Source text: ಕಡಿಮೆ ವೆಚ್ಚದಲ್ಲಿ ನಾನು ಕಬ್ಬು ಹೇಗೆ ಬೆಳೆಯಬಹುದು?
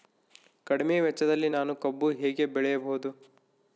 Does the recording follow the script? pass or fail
pass